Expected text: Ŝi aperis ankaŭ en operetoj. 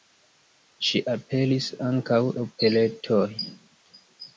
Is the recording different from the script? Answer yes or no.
yes